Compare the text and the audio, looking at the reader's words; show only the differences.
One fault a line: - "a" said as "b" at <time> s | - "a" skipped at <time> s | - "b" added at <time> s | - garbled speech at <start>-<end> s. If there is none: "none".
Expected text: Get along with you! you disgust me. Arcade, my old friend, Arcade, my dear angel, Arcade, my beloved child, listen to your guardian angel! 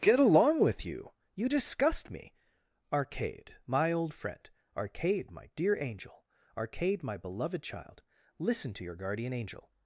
none